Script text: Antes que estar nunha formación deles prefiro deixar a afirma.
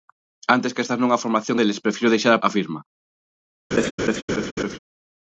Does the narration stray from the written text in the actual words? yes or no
no